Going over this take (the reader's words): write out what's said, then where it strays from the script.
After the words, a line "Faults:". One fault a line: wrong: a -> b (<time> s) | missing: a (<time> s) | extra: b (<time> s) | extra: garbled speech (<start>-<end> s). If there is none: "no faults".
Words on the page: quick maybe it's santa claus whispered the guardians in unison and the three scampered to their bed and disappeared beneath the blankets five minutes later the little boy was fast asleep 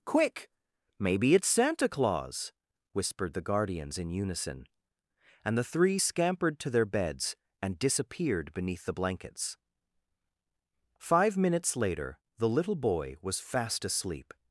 quick maybe it's santa claus whispered the guardians in unison and the three scampered to their beds and disappeared beneath the blankets five minutes later the little boy was fast asleep
Faults:
wrong: bed -> beds (6.8 s)